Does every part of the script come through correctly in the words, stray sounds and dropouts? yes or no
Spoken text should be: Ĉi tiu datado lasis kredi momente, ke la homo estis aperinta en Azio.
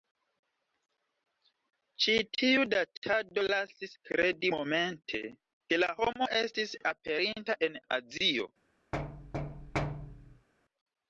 no